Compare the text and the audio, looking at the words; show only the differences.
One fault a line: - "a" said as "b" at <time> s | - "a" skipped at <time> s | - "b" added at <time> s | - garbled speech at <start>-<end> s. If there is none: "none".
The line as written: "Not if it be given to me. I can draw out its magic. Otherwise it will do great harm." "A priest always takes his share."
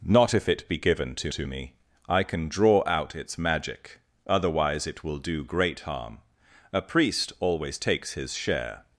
- "to" added at 1.3 s